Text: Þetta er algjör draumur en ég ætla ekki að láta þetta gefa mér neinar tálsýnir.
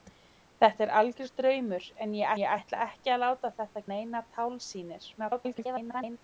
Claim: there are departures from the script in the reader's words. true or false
true